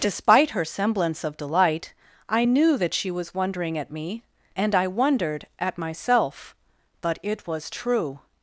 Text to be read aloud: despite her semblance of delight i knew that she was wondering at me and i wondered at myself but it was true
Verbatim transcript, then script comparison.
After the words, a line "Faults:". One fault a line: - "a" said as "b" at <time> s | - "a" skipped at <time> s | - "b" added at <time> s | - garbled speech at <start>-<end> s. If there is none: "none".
despite her semblance of delight i knew that she was wondering at me and i wondered at myself but it was true
Faults:
none